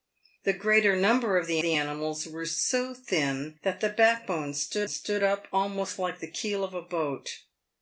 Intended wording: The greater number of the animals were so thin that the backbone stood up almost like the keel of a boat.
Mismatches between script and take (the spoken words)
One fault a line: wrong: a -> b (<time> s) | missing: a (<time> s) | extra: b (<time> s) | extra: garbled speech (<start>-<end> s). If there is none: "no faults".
extra: the (1.6 s)
extra: stood (4.9 s)